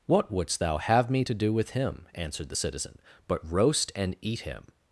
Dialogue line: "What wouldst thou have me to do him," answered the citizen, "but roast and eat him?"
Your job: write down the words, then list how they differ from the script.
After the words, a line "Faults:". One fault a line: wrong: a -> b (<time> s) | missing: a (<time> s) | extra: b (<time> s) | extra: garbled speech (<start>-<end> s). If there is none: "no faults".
"What wouldst thou have me to do with him," answered the citizen, "but roast and eat him?"
Faults:
extra: with (1.5 s)